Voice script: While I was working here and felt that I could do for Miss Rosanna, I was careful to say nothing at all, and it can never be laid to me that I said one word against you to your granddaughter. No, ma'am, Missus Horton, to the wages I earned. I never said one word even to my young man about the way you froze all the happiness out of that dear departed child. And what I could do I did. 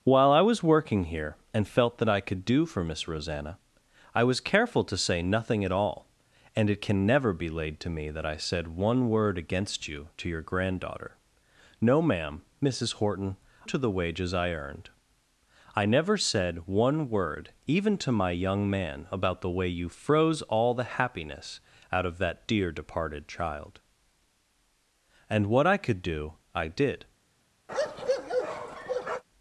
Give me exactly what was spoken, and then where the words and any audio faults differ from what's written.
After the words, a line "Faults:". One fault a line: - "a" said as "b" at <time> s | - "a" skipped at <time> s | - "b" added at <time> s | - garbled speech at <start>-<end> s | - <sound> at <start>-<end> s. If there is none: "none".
While I was working here and felt that I could do for Miss Rosanna, I was careful to say nothing at all, and it can never be laid to me that I said one word against you to your granddaughter. No, ma'am, Missus Horton, to the wages I earned. I never said one word even to my young man about the way you froze all the happiness out of that dear departed child. And what I could do I did.
Faults:
- bark at 27.7-29.2 s